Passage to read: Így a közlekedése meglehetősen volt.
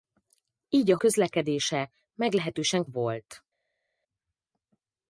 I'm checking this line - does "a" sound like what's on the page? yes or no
yes